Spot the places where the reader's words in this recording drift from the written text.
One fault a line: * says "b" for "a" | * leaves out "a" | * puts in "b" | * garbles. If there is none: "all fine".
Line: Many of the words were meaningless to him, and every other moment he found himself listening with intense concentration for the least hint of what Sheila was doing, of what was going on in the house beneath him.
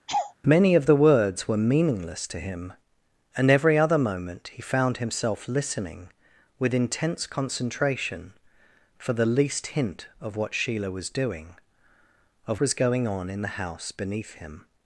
* leaves out "what"